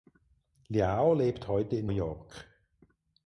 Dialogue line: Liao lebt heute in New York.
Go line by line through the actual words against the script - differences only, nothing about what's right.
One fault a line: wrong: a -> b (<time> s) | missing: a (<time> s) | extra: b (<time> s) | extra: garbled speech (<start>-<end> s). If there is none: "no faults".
missing: New (1.9 s)